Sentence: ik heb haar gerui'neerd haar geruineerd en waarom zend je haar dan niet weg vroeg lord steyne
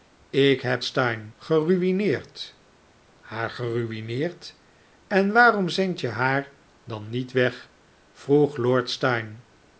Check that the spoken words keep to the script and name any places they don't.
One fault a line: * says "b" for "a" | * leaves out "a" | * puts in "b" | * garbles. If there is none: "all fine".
* says "steyne" for "haar"